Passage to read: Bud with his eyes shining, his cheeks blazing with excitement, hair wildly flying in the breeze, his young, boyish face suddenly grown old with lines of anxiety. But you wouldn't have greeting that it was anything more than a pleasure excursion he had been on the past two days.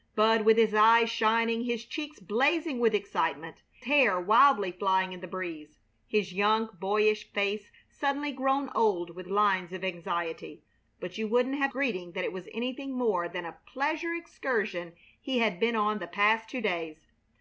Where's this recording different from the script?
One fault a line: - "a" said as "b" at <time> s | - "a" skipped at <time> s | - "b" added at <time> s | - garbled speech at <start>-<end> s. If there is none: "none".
none